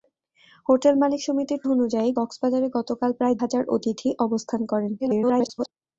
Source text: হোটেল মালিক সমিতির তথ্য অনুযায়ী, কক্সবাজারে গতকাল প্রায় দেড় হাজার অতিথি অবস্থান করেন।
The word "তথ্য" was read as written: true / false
false